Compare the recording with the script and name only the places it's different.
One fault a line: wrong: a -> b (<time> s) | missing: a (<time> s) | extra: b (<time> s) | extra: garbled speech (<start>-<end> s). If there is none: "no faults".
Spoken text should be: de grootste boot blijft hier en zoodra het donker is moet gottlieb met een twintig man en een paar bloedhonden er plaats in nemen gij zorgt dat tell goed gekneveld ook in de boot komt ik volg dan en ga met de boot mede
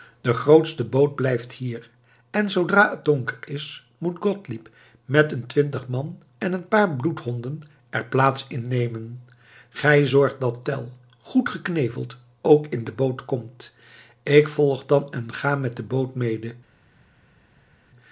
no faults